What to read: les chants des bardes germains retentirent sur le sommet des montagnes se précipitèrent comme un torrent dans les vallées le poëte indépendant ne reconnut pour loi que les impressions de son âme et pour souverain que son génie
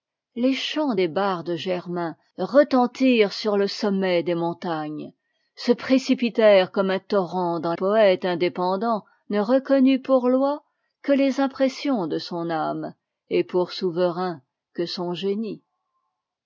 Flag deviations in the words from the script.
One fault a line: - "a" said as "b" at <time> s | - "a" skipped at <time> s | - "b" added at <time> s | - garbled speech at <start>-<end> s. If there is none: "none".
- "les vallées le" skipped at 7.7 s